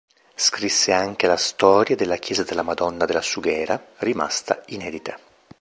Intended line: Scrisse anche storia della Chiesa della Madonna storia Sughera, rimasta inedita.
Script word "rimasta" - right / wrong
right